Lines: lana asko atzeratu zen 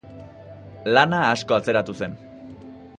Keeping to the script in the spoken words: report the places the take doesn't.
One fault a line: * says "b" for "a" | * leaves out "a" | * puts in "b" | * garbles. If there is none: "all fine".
all fine